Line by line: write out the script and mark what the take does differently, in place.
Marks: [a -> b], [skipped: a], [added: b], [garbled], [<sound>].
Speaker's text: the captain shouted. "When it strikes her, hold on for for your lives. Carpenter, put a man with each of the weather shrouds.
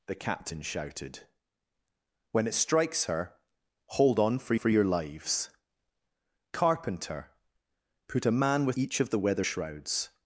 the captain shouted. "When it strikes her, hold on for for your lives. Carpenter, put a man with each of the weather shrouds.